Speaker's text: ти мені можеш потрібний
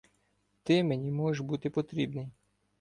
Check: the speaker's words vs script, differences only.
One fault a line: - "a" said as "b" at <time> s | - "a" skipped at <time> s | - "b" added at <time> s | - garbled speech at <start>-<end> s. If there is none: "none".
- "бути" added at 1.4 s